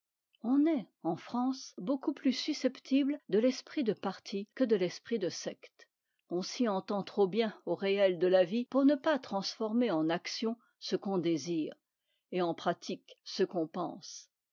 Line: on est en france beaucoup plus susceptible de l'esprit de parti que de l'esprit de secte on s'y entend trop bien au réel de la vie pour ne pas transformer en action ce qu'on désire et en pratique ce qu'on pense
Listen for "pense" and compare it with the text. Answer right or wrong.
right